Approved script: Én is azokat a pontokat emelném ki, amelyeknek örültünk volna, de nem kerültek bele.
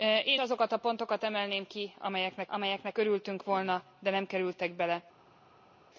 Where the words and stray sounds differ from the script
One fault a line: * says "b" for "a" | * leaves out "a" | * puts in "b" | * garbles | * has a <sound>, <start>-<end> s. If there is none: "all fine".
* leaves out "is"
* puts in "amelyeknek"